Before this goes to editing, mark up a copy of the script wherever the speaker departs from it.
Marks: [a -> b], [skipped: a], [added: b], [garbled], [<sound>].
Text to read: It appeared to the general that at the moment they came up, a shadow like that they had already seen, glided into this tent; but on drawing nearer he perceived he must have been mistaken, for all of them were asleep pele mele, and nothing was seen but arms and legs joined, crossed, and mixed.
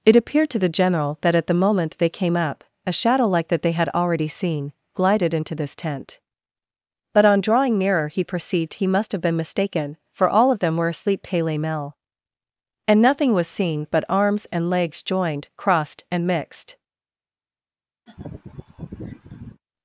It appeared to the general that at the moment they came up, a shadow like that they had already seen, glided into this tent; but on drawing nearer he perceived he must have been mistaken, for all of them were asleep pele mele, and nothing was seen but arms and legs joined, crossed, and mixed. [laugh]